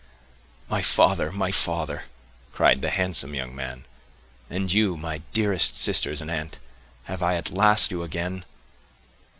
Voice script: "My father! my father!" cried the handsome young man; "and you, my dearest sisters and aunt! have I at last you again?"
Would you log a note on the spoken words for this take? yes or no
no